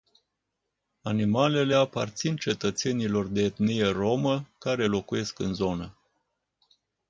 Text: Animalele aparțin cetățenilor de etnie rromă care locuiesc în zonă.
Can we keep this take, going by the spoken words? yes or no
yes